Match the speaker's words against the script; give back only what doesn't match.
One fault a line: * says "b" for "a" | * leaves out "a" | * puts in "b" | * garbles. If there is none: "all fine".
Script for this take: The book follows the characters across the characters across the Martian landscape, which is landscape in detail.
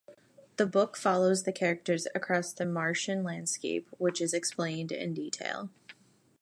* leaves out "characters across the"
* says "explained" for "landscape"